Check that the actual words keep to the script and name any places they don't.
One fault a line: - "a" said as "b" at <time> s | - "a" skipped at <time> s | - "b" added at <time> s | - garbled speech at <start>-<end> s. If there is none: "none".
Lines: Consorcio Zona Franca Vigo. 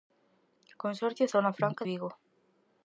none